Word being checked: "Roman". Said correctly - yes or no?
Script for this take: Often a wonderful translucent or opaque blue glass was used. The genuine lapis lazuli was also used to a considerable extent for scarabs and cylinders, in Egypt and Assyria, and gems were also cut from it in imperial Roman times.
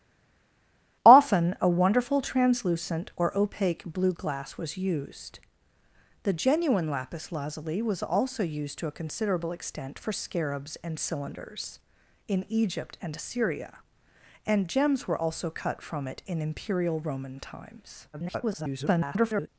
yes